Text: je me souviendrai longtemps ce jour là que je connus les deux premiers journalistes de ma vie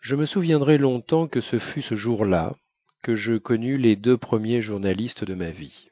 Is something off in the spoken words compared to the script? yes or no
yes